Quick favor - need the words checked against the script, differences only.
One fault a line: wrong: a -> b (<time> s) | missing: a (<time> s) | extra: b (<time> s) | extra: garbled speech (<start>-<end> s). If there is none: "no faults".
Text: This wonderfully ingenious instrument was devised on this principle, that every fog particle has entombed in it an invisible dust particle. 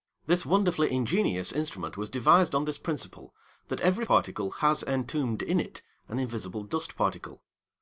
missing: fog (4.0 s)